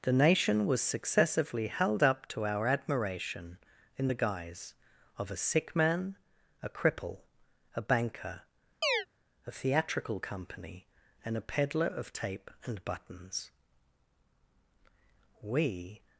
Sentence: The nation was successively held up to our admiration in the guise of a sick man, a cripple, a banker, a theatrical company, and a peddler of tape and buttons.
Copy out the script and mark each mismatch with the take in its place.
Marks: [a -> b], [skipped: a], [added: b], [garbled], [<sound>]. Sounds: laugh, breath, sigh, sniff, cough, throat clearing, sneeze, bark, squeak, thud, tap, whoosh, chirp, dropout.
The nation was successively held up to our admiration in the guise of a sick man, a cripple, a banker, [chirp] a theatrical company, and a peddler of tape and buttons. [added: We]